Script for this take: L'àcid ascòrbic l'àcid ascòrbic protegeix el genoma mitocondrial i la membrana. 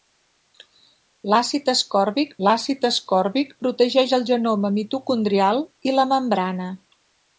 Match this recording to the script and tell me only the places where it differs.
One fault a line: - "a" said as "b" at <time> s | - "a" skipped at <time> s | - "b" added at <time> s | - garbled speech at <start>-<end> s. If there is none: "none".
none